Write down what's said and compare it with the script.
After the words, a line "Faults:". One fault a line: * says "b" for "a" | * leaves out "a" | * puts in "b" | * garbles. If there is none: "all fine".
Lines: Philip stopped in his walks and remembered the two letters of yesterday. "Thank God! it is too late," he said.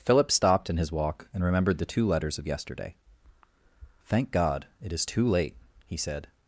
Philip stopped in his walk and remembered the two letters of yesterday. "Thank God! it is too late," he said.
Faults:
* says "walk" for "walks"